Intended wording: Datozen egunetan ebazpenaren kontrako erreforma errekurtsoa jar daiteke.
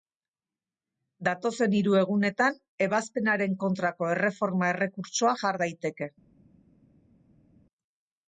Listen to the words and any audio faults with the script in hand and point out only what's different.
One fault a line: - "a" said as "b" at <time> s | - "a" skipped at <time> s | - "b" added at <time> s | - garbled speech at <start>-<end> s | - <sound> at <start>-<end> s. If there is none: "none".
- "hiru" added at 1.8 s